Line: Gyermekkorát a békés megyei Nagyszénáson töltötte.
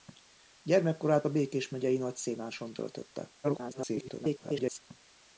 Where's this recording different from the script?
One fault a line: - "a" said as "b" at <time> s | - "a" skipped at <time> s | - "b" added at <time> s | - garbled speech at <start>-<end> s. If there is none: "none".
- garbled speech at 3.4-4.8 s